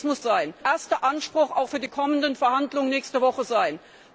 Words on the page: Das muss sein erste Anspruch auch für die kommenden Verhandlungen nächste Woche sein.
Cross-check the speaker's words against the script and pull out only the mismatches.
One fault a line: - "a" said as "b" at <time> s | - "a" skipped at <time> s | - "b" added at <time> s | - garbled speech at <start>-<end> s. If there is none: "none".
none